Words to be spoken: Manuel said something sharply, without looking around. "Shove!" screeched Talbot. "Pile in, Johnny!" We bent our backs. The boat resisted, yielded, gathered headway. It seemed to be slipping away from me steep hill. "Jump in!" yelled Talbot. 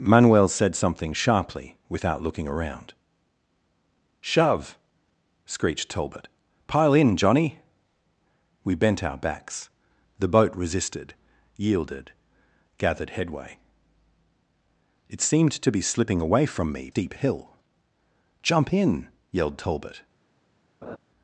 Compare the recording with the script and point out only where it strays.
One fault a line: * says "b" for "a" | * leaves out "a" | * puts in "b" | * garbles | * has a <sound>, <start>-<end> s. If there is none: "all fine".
* has a laugh, 20.8-21.0 s